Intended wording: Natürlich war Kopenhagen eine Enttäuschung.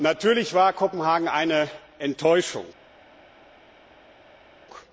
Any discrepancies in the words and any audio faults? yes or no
no